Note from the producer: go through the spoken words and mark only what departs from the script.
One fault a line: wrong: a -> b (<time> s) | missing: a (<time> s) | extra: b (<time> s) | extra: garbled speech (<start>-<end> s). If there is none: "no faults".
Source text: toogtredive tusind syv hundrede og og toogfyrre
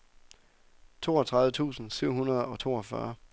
missing: og (2.6 s)